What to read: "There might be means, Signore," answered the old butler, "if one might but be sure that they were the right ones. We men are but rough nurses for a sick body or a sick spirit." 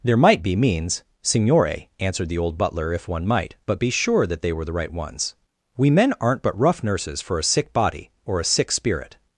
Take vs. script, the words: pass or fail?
fail